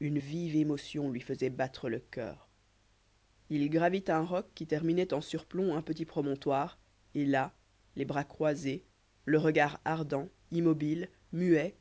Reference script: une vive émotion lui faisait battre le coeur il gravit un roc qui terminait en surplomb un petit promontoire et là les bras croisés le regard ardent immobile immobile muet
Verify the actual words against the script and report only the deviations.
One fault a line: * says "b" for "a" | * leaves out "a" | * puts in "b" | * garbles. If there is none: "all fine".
* leaves out "immobile"